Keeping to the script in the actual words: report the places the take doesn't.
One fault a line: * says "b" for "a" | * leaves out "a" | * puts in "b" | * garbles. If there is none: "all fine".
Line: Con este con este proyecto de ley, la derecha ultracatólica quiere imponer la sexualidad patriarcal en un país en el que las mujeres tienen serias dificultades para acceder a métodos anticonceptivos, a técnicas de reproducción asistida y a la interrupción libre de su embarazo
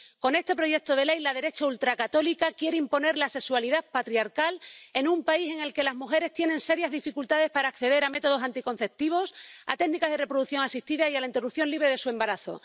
* leaves out "con este"